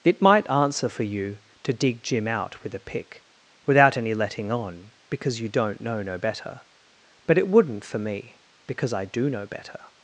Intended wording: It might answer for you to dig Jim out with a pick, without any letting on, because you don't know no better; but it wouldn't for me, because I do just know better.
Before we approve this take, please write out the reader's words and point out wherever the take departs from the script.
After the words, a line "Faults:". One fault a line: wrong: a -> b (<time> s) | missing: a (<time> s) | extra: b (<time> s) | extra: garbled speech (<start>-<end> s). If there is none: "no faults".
It might answer for you to dig Jim out with a pick, without any letting on, because you don't know no better; but it wouldn't for me, because I do know better.
Faults:
missing: just (9.3 s)